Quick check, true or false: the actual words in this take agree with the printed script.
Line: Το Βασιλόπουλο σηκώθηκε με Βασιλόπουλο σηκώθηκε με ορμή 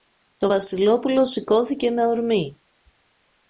false